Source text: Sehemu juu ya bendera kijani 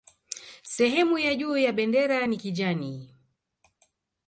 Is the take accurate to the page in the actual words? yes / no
no